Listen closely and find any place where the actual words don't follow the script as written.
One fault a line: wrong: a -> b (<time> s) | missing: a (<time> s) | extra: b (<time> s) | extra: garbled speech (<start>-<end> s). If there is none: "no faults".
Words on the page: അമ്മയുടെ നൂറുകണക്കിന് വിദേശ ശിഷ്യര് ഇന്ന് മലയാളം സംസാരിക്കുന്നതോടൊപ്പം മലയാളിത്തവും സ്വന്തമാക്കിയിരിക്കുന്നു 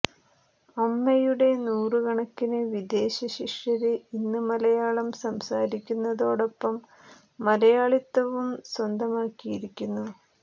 no faults